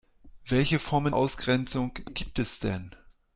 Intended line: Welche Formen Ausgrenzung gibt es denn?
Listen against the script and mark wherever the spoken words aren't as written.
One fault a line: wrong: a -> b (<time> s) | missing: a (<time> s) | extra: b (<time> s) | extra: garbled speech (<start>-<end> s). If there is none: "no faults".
no faults